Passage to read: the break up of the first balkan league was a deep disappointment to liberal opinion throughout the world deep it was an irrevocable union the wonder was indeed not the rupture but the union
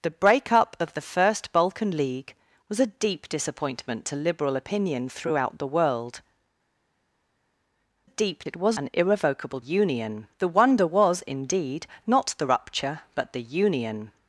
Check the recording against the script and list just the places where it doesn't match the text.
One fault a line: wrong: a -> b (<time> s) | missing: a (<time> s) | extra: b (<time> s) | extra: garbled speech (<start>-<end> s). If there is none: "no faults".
no faults